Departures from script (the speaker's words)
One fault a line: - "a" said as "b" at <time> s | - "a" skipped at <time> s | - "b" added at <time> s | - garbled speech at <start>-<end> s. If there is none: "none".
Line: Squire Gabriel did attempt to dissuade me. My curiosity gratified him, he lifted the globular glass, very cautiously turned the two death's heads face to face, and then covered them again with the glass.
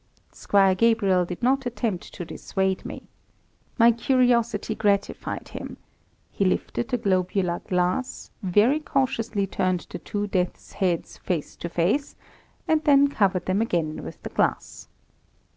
- "not" added at 1.4 s